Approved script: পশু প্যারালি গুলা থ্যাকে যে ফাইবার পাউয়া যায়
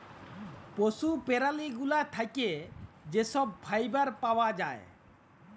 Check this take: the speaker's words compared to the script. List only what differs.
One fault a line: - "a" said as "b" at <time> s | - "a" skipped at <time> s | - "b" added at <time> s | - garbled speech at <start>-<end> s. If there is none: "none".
- "ছব" added at 3.2 s